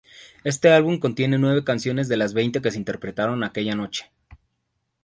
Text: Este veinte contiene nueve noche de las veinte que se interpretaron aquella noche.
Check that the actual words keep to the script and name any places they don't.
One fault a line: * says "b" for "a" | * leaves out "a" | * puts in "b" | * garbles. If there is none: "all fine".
* says "álbum" for "veinte"
* says "canciones" for "noche"